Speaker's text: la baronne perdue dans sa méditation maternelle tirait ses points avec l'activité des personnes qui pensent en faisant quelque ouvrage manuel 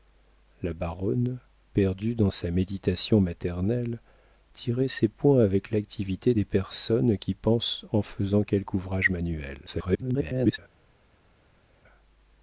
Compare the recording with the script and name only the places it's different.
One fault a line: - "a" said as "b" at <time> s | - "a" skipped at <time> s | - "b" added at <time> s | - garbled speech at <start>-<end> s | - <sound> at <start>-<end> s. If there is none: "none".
- garbled speech at 9.7-10.6 s